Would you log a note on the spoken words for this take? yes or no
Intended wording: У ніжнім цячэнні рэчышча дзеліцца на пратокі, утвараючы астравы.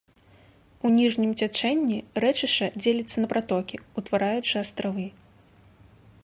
no